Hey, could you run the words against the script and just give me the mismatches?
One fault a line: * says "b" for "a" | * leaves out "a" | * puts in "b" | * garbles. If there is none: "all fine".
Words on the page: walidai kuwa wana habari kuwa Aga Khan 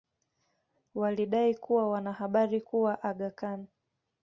all fine